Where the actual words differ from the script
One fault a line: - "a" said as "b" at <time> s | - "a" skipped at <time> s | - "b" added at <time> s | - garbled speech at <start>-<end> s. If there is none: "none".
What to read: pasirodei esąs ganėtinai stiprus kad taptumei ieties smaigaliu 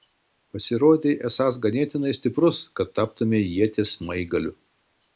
none